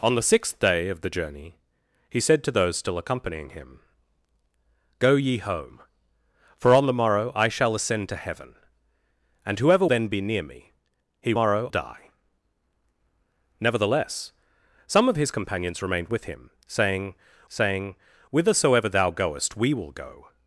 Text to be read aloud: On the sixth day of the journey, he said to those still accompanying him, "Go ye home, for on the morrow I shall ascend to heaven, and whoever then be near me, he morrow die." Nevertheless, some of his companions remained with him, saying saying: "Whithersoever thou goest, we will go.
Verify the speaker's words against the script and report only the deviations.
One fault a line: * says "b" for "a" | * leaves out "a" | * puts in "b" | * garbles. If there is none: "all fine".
all fine